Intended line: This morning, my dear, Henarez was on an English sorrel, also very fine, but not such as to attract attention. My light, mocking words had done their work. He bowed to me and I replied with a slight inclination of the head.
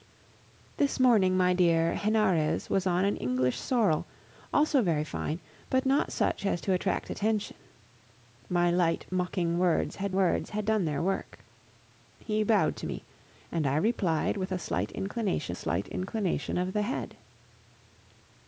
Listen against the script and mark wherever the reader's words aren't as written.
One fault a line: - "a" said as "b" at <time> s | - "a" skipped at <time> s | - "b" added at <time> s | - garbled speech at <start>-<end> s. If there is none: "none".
- "words had" added at 10.2 s
- "slight inclination" added at 15.5 s